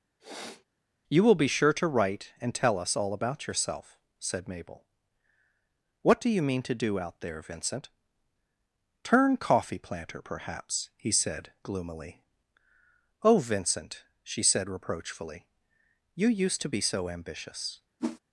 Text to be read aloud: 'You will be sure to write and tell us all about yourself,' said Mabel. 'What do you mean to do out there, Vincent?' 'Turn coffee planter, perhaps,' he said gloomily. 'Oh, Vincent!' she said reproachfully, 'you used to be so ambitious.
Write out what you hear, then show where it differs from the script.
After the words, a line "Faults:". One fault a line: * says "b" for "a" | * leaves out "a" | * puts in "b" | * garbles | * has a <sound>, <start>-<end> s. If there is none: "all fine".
'You will be sure to write and tell us all about yourself,' said Mabel. 'What do you mean to do out there, Vincent?' 'Turn coffee planter, perhaps,' he said gloomily. 'Oh, Vincent!' she said reproachfully, 'you used to be so ambitious.
Faults:
* has a sniff, 0.2-0.6 s
* has a whoosh, 18.0-18.2 s